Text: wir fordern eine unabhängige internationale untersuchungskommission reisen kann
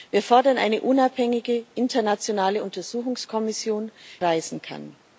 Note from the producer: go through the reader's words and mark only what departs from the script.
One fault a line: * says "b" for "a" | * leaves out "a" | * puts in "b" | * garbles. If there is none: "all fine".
all fine